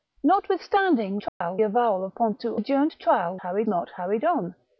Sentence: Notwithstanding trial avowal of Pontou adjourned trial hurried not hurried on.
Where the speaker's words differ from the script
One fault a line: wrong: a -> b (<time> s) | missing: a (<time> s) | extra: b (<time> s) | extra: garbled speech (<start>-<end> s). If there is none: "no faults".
no faults